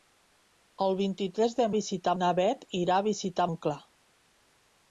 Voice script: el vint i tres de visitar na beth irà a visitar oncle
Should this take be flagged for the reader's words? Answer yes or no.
no